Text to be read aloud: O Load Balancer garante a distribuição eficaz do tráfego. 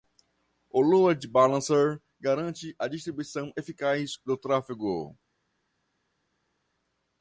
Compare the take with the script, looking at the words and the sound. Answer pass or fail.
pass